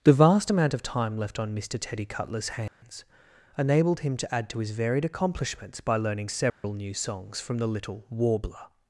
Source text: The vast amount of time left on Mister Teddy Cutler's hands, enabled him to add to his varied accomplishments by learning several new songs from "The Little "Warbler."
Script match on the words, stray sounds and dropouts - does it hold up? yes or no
no